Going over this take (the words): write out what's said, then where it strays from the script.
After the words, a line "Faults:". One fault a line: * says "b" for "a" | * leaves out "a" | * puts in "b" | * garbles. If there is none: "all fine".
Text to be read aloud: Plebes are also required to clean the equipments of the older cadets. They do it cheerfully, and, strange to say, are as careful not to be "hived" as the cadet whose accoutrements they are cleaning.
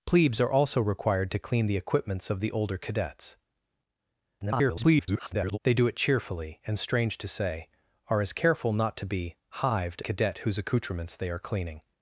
Plebes are also required to clean the equipments of the older cadets. [garbled] They do it cheerfully, and, strange to say, are as careful not to be "hived" cadet whose accoutrements they are cleaning.
Faults:
* garbles
* leaves out "as the"